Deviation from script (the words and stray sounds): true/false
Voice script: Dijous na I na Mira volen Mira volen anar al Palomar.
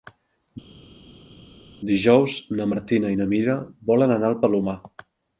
true